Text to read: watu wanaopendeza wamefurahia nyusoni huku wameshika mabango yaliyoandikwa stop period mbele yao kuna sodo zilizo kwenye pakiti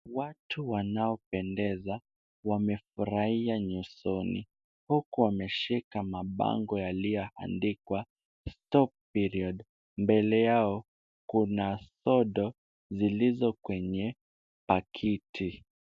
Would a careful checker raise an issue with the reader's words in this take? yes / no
no